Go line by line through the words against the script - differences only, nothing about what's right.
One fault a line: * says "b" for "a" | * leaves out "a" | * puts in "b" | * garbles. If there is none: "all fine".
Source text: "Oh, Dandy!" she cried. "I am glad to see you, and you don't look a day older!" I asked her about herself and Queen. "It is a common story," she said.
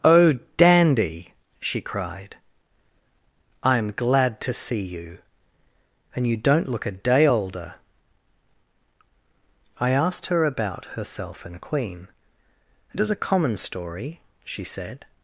all fine